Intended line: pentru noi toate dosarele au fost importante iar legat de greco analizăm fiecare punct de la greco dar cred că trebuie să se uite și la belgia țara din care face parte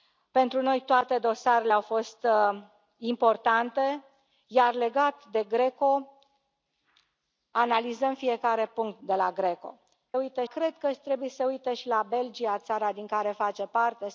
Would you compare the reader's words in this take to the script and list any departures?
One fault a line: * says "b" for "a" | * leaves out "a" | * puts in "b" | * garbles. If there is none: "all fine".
* says "uite" for "dar"